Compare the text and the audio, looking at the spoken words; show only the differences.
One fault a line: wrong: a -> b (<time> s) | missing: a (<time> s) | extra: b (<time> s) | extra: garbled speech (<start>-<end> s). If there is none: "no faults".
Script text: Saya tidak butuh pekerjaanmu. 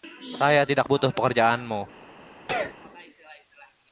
no faults